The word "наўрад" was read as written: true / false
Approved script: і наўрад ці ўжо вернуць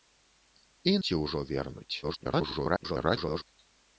false